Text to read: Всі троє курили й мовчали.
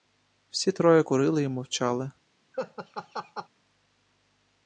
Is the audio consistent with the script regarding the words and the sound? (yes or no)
no